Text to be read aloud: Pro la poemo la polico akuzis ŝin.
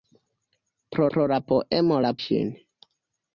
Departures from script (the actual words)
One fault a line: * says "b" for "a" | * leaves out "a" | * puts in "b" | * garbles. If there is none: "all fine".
* puts in "pro"
* leaves out "polico akuzis"